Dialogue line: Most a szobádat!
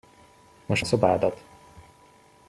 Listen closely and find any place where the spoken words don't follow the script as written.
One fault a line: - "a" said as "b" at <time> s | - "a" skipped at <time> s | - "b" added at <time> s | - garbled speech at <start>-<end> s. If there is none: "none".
none